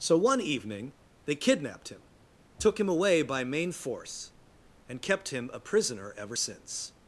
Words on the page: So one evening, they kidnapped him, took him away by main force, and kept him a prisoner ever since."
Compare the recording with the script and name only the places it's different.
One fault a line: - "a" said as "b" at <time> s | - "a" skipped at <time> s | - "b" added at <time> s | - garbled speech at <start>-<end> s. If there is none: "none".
none